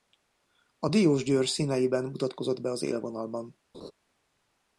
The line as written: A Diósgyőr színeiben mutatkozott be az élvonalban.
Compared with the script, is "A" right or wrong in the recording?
right